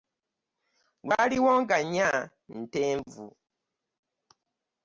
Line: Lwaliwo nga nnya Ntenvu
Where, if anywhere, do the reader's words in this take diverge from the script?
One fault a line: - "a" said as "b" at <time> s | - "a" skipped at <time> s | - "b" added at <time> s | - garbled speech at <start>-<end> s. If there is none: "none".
none